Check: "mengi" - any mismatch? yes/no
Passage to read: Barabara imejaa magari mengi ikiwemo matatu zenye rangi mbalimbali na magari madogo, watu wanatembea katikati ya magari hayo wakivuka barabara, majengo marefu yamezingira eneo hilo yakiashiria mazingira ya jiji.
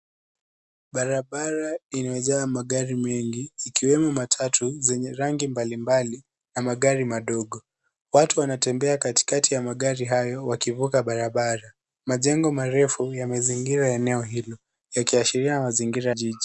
no